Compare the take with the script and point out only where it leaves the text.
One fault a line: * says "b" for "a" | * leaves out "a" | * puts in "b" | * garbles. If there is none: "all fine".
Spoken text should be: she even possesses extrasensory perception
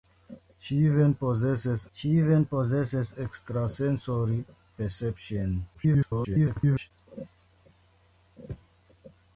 * puts in "she even possesses"
* garbles